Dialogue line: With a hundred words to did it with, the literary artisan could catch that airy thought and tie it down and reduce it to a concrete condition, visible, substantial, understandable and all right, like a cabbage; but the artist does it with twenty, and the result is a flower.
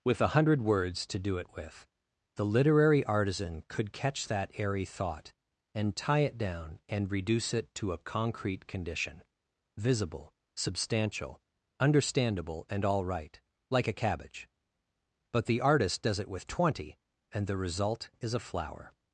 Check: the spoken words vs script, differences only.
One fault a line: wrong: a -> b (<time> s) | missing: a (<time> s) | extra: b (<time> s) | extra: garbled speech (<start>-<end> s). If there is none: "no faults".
wrong: did -> do (1.2 s)